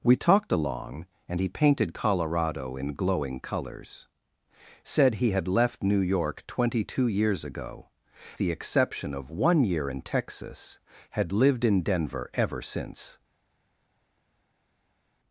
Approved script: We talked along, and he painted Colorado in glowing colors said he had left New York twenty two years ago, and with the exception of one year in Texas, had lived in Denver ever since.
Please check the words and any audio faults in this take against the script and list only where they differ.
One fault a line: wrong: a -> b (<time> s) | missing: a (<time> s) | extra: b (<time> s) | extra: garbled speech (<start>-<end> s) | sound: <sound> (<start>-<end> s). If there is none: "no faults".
missing: and with (7.9 s)